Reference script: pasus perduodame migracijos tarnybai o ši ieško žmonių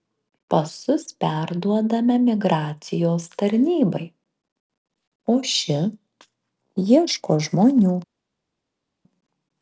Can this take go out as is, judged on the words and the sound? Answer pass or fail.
pass